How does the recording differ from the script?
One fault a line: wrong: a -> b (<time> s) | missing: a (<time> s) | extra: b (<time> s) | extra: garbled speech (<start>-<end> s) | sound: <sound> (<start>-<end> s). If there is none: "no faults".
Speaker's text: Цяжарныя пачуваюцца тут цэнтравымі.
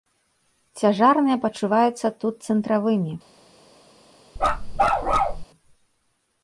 sound: bark (4.4-5.4 s)